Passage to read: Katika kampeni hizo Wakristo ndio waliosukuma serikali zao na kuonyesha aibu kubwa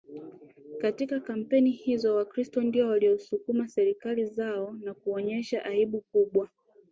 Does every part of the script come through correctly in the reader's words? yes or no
yes